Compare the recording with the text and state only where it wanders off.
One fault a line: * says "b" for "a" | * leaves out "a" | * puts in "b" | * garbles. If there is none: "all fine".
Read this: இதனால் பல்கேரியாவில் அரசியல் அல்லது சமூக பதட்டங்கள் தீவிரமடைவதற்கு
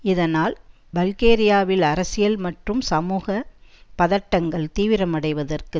* says "மற்றும்" for "அல்லது"